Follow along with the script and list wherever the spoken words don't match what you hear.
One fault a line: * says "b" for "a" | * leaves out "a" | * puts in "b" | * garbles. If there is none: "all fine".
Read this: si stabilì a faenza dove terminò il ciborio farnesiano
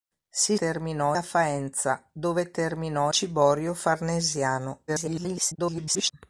* says "terminò" for "stabilì"
* leaves out "il"
* garbles